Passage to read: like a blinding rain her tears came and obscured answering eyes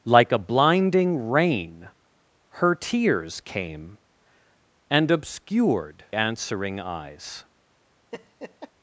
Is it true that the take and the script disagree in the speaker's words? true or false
false